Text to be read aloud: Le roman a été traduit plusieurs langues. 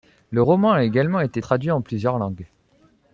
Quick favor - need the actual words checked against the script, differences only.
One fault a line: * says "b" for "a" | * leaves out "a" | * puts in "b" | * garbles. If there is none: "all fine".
* puts in "également"
* puts in "en"